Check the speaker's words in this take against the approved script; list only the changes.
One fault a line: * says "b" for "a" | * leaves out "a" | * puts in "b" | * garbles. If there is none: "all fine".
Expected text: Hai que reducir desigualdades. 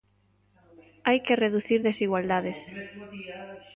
all fine